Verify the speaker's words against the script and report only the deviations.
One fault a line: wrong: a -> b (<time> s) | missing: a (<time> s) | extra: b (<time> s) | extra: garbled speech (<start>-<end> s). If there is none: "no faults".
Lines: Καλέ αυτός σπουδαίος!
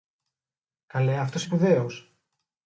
no faults